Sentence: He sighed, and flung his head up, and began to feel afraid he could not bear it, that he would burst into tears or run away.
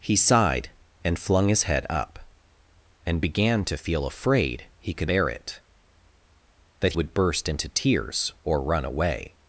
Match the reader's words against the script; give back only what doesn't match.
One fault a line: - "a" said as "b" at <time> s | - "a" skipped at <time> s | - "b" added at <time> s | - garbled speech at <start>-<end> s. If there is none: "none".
- "not" skipped at 5.1 s
- "he" skipped at 6.9 s